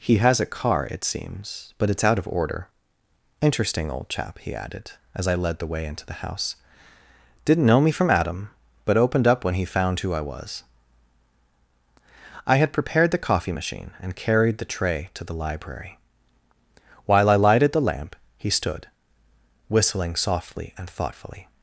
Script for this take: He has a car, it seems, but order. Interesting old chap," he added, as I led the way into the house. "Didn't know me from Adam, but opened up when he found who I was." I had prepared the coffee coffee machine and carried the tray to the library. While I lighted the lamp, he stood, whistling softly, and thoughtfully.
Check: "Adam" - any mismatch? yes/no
no